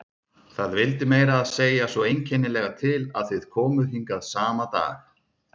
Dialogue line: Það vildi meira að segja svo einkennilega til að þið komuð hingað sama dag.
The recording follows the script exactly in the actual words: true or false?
true